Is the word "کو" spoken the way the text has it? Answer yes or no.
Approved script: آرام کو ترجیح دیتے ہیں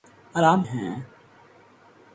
no